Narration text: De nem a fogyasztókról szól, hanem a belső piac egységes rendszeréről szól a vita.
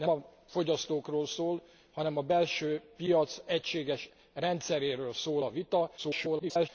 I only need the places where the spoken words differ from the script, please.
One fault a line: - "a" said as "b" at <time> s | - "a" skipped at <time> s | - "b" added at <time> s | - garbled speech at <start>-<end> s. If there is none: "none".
- "nem" skipped at 0.1 s
- garbled speech at 6.0-6.7 s